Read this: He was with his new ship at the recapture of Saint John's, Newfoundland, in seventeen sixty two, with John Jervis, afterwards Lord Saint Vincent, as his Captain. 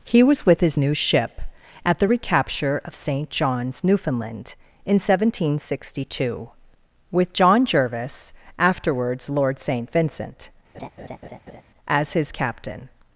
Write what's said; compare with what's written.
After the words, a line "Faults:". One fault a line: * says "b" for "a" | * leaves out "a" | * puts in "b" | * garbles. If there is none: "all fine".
He was with his new ship at the recapture of Saint John's, Newfoundland, in seventeen sixty two, with John Jervis, afterwards Lord Saint Vincent, as his Captain.
Faults:
all fine